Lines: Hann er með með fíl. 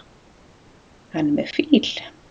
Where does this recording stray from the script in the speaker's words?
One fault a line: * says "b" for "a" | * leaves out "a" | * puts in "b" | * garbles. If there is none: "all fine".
* leaves out "með"